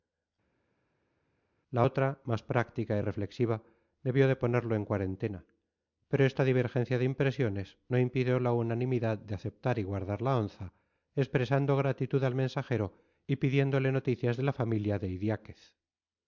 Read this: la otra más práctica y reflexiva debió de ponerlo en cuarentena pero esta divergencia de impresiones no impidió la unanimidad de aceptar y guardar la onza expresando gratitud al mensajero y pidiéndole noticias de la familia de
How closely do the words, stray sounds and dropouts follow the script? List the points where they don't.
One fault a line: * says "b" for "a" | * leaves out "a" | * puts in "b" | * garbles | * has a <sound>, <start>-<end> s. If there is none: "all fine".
all fine